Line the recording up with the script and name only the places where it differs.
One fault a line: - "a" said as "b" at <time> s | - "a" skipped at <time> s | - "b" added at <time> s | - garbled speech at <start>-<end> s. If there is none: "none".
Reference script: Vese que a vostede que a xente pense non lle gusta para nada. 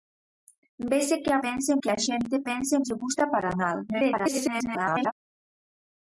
- "vostede" said as "pense" at 1.4 s
- "non" skipped at 2.8 s
- garbled speech at 3.9-5.1 s